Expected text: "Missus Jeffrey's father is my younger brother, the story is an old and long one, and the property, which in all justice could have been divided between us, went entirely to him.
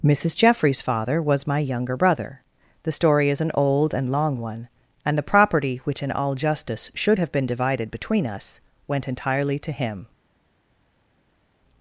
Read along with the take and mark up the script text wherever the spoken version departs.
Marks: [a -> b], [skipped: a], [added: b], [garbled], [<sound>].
"Missus Jeffrey's father [is -> was] my younger brother, the story is an old and long one, and the property, which in all justice [could -> should] have been divided between us, went entirely to him.